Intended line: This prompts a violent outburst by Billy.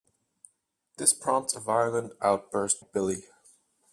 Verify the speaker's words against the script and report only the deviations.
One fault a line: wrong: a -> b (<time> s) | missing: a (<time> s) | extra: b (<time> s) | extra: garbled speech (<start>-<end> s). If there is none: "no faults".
missing: by (2.8 s)